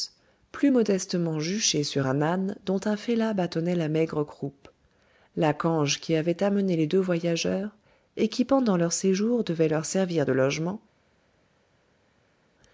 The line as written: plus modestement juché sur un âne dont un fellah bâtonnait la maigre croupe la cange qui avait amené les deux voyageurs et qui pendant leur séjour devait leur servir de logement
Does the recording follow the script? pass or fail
pass